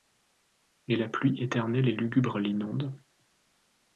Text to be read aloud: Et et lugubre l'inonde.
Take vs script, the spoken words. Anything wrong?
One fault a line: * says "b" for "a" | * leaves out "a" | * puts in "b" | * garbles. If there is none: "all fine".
* puts in "la pluie éternelle"